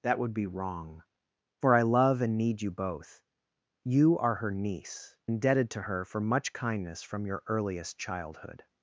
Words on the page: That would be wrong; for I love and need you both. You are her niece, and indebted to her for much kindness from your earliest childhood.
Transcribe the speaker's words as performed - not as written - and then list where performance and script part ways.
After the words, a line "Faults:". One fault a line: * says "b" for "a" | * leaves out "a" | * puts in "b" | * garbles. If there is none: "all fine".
That would be wrong; for I love and need you both. You are her niece, indebted to her for much kindness from your earliest childhood.
Faults:
* leaves out "and"